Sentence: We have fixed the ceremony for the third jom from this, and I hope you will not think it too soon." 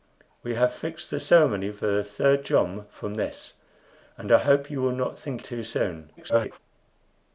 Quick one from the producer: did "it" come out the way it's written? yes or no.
no